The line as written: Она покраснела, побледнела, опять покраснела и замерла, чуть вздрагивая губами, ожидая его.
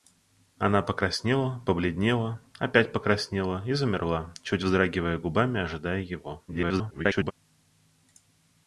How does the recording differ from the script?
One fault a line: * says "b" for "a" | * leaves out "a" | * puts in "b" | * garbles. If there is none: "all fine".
* garbles